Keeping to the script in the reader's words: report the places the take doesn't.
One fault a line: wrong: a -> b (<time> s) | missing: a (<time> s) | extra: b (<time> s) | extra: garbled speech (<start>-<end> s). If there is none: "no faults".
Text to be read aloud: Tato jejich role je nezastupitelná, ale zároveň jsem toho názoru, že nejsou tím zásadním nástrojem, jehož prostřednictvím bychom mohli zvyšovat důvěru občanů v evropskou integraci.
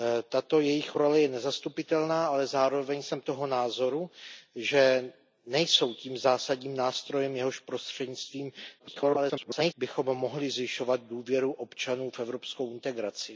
extra: garbled speech (8.8-9.7 s)